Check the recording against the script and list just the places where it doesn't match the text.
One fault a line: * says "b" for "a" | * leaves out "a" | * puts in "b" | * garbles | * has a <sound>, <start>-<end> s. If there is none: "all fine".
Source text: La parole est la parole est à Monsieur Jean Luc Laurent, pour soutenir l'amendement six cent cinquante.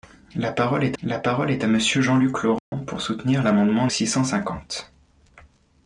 * has a dropout, 2.6-2.7 s